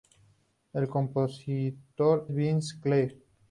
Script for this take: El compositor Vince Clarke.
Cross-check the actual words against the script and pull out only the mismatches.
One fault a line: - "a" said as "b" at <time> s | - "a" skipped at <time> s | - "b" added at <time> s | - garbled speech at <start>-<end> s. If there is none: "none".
none